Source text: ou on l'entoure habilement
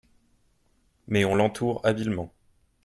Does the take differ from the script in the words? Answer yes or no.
yes